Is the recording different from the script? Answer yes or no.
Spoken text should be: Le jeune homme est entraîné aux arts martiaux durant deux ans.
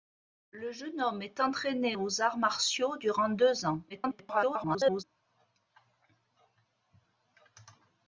yes